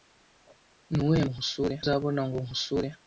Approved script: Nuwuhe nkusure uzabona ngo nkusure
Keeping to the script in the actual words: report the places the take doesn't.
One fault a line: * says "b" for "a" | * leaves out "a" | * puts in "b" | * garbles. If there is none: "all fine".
all fine